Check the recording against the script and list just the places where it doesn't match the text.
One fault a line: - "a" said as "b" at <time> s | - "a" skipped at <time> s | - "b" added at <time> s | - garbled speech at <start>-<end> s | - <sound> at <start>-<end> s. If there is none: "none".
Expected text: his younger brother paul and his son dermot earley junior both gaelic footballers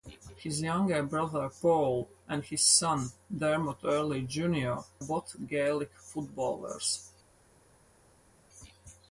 none